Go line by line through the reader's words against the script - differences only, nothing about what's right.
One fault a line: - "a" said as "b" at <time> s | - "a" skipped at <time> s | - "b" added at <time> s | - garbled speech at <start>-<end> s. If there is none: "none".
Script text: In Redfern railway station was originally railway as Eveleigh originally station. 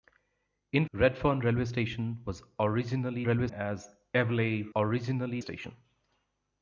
none